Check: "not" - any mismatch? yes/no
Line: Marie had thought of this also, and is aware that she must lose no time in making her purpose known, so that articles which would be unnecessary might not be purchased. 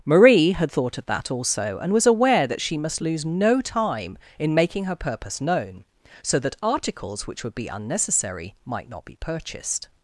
no